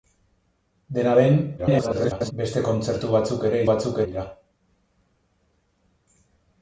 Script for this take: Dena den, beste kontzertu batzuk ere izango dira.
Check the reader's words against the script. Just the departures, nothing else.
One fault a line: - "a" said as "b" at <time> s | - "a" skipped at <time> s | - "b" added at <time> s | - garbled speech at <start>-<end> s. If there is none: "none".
- garbled speech at 1.6-2.3 s
- "izango" said as "batzuk" at 3.7 s